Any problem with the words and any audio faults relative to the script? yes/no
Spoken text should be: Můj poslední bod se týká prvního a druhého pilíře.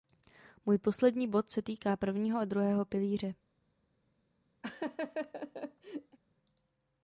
yes